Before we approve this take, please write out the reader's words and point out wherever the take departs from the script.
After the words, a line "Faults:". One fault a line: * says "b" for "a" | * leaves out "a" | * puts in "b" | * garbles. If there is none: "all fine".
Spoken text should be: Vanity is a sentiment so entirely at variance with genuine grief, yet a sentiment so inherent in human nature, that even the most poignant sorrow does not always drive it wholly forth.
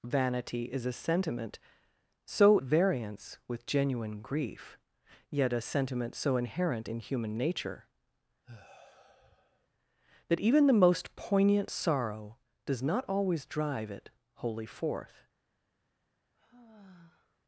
Vanity is a sentiment so variance with genuine grief, yet a sentiment so inherent in human nature, that even the most poignant sorrow does not always drive it wholly forth.
Faults:
* leaves out "entirely at"